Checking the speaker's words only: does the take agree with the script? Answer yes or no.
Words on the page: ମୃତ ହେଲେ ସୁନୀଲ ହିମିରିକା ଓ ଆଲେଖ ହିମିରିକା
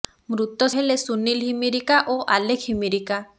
yes